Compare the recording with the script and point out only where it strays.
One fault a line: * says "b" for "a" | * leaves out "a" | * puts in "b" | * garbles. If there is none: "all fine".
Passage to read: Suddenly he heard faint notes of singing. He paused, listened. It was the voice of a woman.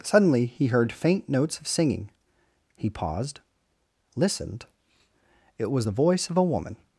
all fine